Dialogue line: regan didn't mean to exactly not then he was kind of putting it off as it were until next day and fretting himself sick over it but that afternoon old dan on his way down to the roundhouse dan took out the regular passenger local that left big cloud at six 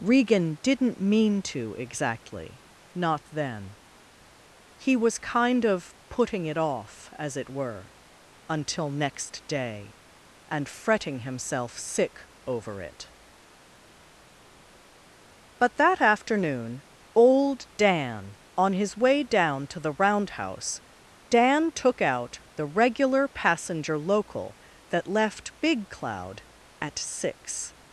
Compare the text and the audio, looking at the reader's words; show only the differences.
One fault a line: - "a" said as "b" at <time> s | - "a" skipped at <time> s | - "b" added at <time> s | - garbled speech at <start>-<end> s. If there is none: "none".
none